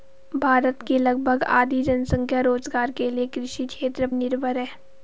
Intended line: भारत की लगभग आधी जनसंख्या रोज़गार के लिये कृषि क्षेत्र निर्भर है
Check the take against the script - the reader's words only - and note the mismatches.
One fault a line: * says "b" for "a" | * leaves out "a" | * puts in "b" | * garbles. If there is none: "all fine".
all fine